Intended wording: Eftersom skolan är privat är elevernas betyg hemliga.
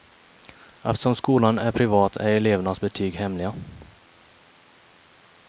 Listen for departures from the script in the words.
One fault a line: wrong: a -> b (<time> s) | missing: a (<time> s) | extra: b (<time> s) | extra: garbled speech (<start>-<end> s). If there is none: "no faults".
no faults